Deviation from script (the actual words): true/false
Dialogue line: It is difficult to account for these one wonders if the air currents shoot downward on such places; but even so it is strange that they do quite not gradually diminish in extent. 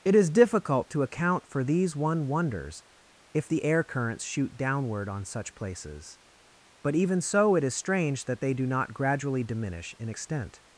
true